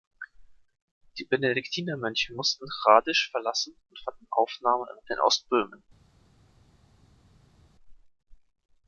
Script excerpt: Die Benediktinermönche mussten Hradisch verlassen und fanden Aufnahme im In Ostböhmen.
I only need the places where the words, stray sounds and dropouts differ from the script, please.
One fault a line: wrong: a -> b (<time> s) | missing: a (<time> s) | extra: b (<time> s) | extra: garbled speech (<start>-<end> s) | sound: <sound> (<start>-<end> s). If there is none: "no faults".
no faults